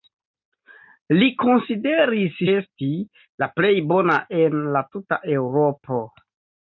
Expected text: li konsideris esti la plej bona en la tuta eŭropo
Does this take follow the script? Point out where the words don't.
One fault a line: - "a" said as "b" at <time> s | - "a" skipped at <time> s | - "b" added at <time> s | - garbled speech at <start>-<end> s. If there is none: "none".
none